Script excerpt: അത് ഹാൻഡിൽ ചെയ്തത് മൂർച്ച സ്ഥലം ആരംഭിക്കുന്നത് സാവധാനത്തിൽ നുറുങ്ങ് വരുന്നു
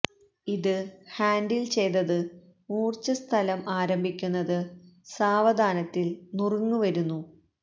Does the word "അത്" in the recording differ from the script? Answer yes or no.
yes